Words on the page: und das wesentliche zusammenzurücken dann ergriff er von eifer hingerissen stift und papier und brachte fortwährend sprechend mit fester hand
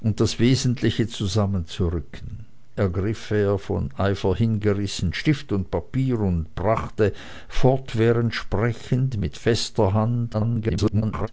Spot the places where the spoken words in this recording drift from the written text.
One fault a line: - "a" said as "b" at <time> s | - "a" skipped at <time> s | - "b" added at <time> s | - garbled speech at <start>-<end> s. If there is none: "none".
- "dann" skipped at 2.5 s
- garbled speech at 10.3-11.3 s